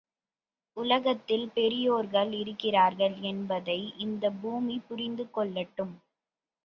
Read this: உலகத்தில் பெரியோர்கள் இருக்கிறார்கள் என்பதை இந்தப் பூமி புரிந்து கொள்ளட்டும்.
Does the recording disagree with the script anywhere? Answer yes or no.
no